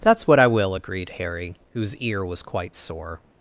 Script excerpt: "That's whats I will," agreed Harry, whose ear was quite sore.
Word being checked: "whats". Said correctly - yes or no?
no